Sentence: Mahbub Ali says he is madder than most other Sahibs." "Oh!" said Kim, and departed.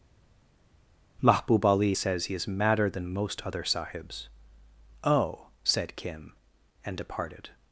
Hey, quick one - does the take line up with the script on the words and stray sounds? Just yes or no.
yes